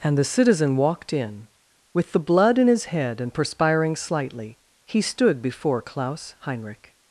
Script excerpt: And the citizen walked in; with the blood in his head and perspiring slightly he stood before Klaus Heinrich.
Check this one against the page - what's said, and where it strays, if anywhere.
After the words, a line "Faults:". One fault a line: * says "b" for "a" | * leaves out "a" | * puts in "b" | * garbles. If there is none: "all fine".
And the citizen walked in; with the blood in his head and perspiring slightly he stood before Klaus Heinrich.
Faults:
all fine